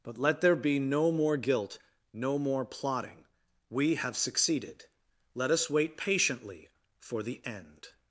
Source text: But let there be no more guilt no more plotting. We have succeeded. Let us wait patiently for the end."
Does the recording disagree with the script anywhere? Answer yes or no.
no